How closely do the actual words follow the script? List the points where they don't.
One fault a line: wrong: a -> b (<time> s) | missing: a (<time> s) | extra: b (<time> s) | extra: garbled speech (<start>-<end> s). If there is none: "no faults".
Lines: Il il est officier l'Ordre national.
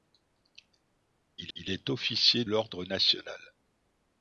no faults